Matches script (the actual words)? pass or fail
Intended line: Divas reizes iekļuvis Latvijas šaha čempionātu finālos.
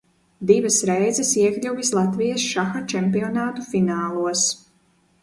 pass